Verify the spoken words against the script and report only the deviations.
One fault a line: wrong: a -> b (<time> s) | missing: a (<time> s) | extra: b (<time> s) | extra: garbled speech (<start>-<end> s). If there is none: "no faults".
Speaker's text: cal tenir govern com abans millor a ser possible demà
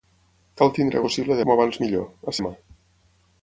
wrong: govern -> possible (1.0 s)
missing: ser possible (2.4 s)